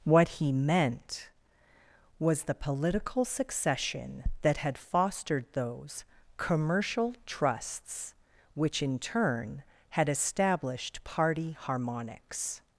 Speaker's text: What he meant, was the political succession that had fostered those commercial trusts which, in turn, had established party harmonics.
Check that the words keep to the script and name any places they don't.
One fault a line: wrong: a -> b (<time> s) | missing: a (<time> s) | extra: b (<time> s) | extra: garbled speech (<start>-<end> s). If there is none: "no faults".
no faults